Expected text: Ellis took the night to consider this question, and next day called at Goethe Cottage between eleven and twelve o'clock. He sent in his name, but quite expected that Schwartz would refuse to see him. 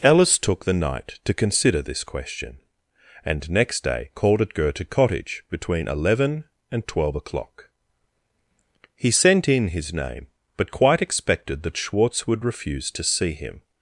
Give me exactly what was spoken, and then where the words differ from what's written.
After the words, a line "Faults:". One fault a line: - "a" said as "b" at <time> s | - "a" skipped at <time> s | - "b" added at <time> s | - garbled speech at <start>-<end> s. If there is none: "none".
Ellis took the night to consider this question, and next day called at Goethe Cottage between eleven and twelve o'clock. He sent in his name, but quite expected that Schwartz would refuse to see him.
Faults:
none